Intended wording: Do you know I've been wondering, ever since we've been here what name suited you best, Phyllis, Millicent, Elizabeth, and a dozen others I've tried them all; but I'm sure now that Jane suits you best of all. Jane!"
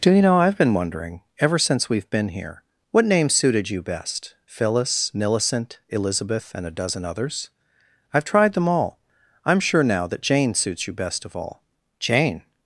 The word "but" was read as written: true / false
false